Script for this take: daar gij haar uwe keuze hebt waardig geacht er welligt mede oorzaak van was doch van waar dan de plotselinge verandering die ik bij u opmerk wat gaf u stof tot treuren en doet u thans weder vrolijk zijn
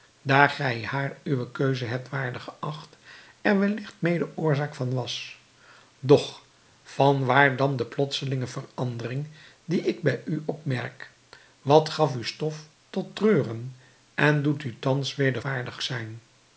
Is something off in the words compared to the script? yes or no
yes